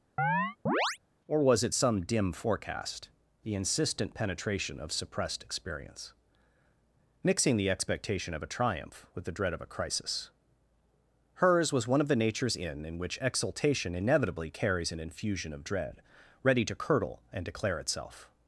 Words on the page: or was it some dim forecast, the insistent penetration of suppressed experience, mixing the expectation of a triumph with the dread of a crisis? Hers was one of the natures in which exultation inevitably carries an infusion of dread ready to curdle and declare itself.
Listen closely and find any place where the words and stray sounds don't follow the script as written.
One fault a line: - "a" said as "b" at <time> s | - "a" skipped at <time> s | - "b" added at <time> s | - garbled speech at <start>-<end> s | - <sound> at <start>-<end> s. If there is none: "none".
- chirp at 0.2-1.0 s
- "in" added at 12.9 s